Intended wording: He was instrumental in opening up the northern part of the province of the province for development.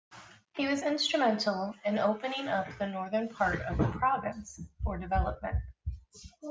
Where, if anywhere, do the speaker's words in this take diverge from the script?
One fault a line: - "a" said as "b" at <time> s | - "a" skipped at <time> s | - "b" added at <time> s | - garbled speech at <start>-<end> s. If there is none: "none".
- "of the province" skipped at 4.6 s